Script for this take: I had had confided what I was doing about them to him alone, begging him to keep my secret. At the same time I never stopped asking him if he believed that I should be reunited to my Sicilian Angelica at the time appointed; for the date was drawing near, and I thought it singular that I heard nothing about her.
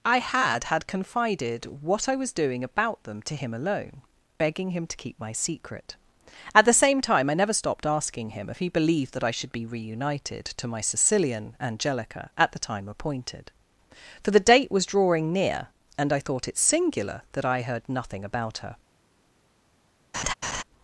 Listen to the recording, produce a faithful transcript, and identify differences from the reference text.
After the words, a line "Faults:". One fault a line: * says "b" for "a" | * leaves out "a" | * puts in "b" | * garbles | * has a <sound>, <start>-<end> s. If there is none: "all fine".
I had had confided what I was doing about them to him alone, begging him to keep my secret. At the same time I never stopped asking him if he believed that I should be reunited to my Sicilian Angelica at the time appointed; for the date was drawing near, and I thought it singular that I heard nothing about her.
Faults:
* has a laugh, 20.1-20.6 s